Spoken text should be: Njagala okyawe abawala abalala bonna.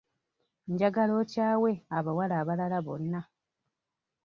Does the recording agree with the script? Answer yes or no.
yes